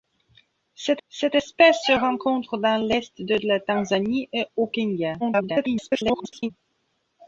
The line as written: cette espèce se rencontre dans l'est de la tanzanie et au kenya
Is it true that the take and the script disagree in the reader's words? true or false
true